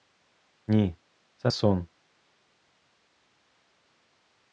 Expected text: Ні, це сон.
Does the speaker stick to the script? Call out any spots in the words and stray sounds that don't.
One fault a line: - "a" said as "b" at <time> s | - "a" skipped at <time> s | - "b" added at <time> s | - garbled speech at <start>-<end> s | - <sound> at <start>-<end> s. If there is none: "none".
none